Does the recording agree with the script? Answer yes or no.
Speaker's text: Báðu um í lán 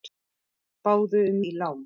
yes